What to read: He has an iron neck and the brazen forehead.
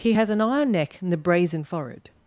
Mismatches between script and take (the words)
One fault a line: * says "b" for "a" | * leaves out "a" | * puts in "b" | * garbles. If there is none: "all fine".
all fine